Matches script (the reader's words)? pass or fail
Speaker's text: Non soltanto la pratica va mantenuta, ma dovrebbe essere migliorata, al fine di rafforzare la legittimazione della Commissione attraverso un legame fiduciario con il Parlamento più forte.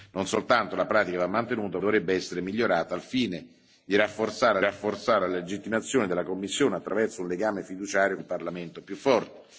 fail